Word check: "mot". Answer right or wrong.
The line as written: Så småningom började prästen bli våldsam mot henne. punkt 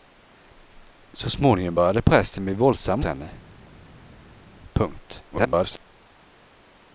wrong